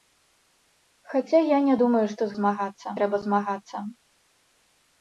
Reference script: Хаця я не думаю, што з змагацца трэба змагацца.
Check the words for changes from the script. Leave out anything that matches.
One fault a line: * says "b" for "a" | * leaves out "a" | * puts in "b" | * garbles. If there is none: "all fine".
all fine